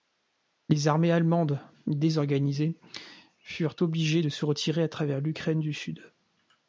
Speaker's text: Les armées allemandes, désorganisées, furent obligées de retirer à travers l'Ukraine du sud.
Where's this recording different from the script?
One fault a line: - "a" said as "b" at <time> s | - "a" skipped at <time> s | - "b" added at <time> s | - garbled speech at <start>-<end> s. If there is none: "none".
- "se" added at 4.3 s